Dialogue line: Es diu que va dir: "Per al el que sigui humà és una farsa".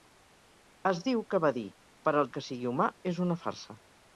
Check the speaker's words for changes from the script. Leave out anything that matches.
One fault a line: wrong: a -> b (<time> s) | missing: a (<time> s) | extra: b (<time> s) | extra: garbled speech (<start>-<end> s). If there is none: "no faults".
no faults